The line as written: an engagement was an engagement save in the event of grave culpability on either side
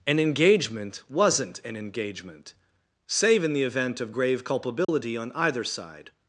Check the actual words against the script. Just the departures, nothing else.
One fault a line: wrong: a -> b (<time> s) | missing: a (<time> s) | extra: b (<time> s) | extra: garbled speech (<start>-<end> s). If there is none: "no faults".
wrong: was -> wasn't (1.1 s)